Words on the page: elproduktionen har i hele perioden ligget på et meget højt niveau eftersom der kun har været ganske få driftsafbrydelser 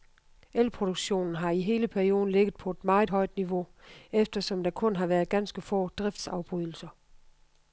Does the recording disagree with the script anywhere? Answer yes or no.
no